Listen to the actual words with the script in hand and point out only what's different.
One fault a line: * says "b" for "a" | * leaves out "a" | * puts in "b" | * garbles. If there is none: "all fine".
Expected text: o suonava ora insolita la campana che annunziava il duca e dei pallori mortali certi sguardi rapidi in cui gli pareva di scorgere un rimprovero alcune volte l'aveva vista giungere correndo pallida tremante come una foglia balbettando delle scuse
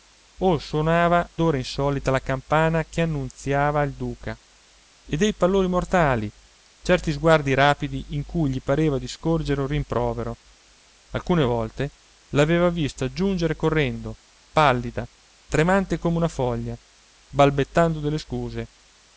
all fine